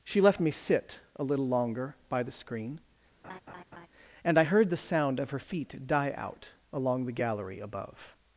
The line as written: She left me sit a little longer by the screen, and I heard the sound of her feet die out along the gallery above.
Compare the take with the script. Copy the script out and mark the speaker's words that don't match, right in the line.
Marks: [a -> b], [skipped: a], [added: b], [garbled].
She left me sit a little longer by the screen, and I heard the sound of her feet die out along the gallery above.